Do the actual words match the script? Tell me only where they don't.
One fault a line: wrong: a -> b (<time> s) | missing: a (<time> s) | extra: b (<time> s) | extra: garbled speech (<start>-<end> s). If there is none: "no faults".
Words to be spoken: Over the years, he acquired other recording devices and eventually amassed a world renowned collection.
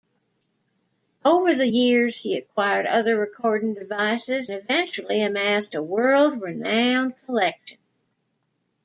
missing: and (4.5 s)